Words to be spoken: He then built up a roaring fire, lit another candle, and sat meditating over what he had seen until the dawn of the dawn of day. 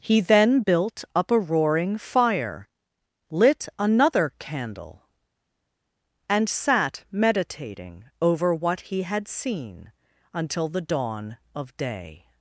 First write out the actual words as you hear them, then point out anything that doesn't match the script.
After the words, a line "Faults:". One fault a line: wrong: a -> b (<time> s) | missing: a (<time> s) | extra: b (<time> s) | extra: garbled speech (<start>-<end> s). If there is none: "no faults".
He then built up a roaring fire, lit another candle, and sat meditating over what he had seen until the dawn of day.
Faults:
missing: the dawn of (11.7 s)